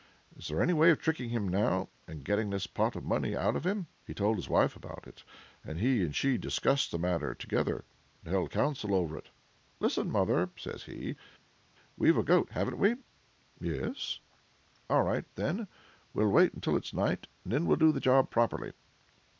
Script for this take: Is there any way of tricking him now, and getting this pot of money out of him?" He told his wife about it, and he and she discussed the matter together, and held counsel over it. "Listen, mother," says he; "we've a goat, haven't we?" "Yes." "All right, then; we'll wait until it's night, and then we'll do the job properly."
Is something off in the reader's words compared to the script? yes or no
no